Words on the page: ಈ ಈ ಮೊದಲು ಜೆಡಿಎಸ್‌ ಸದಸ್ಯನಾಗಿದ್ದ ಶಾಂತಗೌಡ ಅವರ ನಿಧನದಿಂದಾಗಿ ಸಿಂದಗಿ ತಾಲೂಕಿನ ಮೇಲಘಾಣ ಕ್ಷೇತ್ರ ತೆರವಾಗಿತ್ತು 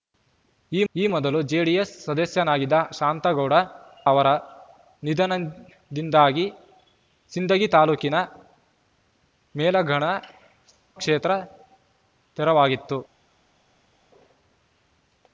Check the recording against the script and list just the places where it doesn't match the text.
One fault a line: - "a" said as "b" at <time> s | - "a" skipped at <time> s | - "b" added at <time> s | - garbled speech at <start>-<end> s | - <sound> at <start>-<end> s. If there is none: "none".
none